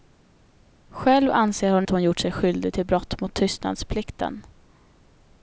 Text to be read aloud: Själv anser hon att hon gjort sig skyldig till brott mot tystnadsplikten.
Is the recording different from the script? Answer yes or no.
no